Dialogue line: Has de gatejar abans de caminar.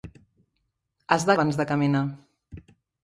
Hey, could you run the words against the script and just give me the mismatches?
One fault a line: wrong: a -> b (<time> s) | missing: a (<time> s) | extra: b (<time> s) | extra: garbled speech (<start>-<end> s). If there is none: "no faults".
missing: gatejar (1.4 s)